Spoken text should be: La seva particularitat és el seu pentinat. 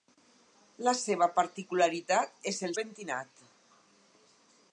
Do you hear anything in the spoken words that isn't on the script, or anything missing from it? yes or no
yes